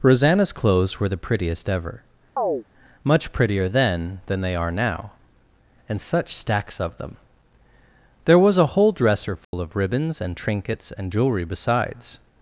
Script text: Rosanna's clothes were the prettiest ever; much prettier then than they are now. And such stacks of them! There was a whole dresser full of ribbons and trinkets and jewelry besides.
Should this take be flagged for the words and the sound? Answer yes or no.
yes